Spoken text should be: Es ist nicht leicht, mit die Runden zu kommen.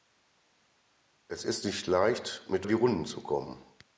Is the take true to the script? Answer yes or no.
yes